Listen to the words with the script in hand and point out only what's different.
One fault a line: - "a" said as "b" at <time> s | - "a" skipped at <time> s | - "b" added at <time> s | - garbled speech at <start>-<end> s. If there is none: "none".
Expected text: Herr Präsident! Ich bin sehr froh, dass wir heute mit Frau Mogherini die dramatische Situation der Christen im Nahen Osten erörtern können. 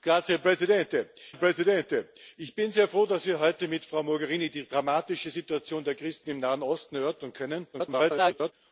- "Präsident" added at 1.4 s
- garbled speech at 7.7-8.5 s